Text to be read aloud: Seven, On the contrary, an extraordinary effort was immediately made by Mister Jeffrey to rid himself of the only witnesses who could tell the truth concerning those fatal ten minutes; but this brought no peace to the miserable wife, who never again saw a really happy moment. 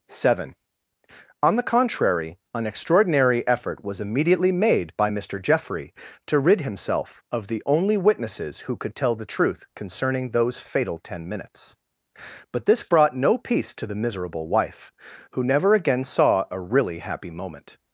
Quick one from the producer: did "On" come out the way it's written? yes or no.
yes